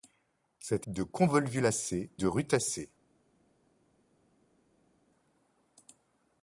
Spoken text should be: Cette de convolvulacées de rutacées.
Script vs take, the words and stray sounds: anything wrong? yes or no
no